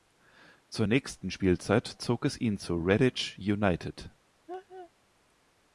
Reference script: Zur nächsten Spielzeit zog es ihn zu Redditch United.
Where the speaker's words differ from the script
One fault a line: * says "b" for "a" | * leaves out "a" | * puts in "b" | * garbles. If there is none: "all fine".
all fine